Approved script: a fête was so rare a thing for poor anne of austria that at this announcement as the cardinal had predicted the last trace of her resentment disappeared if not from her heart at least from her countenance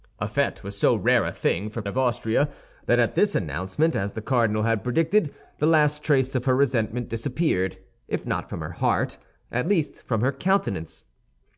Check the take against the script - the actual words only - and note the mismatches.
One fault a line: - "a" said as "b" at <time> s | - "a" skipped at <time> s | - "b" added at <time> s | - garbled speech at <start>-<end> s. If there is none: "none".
- "poor anne" skipped at 1.8 s